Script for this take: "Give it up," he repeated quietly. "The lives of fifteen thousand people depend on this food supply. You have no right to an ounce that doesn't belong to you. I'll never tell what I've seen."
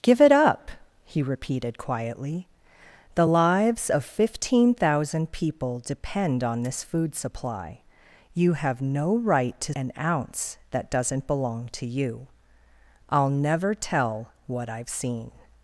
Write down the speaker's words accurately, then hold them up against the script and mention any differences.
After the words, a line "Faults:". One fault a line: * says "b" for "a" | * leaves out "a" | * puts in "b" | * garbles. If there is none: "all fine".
"Give it up," he repeated quietly. "The lives of fifteen thousand people depend on this food supply. You have no right to an ounce that doesn't belong to you. I'll never tell what I've seen."
Faults:
all fine